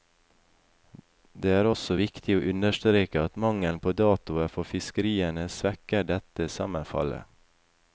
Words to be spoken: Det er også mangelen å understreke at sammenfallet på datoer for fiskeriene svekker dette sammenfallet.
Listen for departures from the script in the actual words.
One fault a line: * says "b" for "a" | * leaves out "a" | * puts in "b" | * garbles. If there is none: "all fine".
* says "viktig" for "mangelen"
* says "mangelen" for "sammenfallet"